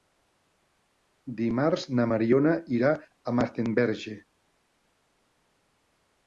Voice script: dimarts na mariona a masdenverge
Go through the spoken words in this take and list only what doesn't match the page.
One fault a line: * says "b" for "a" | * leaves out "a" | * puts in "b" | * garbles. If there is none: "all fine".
* puts in "irà"